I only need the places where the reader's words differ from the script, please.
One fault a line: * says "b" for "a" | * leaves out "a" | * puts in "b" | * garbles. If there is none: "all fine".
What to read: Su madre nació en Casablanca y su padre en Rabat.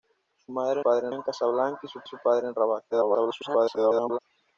* says "padre" for "nació"
* puts in "su"
* garbles